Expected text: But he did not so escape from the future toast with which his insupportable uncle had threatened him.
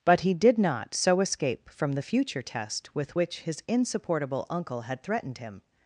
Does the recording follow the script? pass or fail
fail